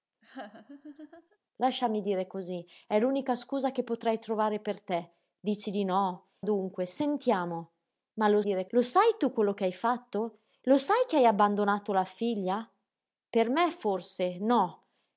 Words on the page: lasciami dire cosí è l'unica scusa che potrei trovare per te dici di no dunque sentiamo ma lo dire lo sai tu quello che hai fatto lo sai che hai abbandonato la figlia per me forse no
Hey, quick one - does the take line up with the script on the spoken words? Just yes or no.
yes